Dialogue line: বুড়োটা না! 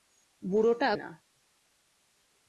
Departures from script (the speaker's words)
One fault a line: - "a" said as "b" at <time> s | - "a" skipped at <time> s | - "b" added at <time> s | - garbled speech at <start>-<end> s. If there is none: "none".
none